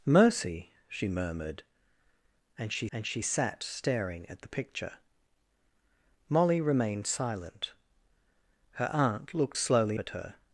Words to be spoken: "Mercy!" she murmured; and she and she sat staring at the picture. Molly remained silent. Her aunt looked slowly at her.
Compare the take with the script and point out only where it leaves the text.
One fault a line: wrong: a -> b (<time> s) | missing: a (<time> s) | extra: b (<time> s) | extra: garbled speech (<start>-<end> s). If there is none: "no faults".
no faults